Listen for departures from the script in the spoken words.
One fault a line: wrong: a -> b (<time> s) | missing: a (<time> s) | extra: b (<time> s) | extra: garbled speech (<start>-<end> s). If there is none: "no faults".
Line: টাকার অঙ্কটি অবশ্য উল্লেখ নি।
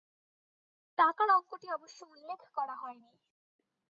extra: করা হয় (2.5 s)